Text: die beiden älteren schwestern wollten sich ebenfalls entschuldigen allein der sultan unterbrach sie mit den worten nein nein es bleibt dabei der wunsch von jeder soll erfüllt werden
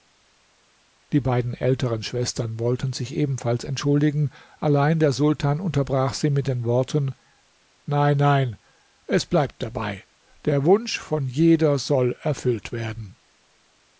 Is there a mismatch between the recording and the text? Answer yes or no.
no